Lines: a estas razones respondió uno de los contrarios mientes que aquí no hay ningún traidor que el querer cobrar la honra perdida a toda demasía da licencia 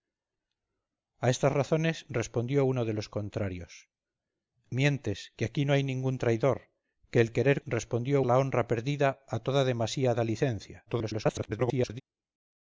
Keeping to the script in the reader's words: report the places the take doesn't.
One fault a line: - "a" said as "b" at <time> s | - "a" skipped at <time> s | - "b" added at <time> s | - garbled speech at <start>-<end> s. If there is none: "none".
- "cobrar" said as "respondió" at 7.6 s
- garbled speech at 10.9-12.0 s